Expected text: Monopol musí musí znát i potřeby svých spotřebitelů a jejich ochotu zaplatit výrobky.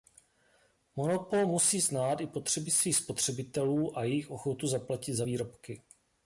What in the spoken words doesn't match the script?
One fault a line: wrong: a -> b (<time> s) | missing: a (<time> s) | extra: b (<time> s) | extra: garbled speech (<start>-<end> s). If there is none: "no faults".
missing: musí (1.8 s)
extra: za (5.1 s)